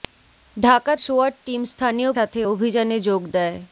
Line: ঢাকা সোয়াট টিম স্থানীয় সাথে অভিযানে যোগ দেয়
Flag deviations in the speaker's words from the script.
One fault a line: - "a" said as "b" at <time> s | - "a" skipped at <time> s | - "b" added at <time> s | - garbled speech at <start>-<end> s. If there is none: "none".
none